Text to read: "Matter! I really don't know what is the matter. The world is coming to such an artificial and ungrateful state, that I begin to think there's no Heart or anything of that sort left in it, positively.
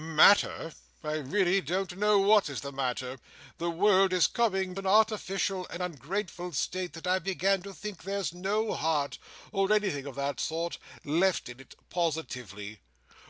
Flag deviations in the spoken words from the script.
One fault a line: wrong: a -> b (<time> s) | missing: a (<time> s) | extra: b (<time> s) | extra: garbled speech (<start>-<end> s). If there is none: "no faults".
missing: to such (4.8 s)